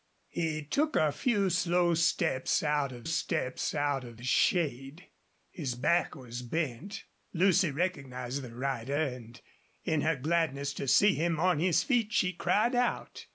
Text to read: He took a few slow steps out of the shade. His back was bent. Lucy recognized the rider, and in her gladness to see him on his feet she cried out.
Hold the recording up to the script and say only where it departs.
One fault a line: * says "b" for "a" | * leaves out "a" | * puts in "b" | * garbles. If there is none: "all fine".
* puts in "steps out of"